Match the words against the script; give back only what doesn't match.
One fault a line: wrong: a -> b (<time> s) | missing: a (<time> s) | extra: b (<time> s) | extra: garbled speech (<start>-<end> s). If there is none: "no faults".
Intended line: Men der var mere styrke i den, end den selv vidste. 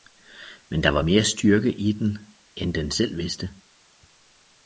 no faults